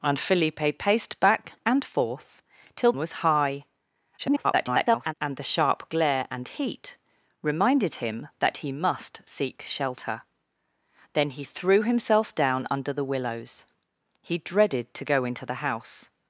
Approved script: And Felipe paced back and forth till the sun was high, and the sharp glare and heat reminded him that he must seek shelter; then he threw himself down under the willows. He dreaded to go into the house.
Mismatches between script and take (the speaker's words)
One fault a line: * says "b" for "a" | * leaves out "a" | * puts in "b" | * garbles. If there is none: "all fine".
* leaves out "the sun"
* garbles